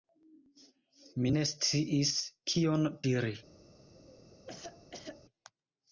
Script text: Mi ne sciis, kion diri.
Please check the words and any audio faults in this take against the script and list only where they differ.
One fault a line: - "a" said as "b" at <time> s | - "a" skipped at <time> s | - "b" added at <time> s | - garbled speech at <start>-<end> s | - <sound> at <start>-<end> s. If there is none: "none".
- cough at 3.9-5.2 s